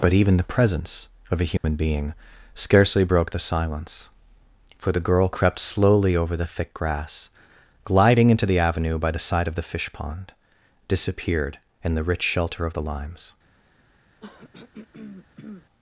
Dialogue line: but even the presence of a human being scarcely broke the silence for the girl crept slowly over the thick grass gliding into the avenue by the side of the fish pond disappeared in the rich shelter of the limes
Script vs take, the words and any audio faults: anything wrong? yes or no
yes